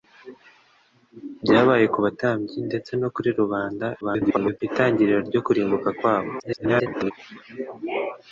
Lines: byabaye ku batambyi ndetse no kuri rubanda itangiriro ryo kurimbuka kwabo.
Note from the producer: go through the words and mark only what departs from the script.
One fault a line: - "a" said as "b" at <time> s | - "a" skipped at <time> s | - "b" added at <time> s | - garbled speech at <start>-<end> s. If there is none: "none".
- garbled speech at 4.0-4.6 s
- garbled speech at 6.4-7.1 s